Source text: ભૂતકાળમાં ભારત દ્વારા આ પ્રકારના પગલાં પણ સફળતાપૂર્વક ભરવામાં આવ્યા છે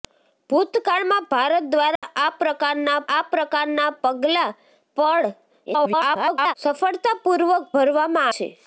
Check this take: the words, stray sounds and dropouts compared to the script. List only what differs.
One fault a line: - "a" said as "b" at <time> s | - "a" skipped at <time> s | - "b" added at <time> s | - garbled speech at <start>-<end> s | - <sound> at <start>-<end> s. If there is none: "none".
- dropout at 2.0-2.0 s
- "આ પ્રકારના" added at 3.1 s
- garbled speech at 5.7-6.5 s
- "આવ્યા" skipped at 8.3 s